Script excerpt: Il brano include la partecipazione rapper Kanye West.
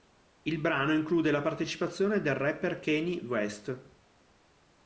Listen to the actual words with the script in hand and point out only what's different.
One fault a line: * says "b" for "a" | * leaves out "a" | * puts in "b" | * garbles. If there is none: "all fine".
* puts in "del"